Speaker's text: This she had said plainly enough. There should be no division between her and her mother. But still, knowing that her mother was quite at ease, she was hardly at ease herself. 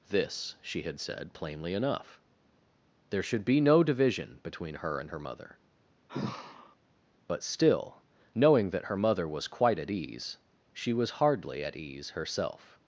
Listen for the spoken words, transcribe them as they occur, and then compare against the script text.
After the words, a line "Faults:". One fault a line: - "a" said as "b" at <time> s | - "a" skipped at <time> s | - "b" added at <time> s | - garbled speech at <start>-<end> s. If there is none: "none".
This she had said plainly enough. There should be no division between her and her mother. But still, knowing that her mother was quite at ease, she was hardly at ease herself.
Faults:
none